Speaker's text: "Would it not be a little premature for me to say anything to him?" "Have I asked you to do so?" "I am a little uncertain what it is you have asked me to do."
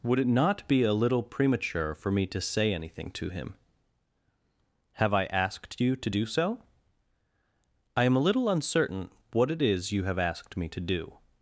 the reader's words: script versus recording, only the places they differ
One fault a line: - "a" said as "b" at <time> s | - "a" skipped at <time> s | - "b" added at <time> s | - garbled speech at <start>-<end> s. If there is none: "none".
none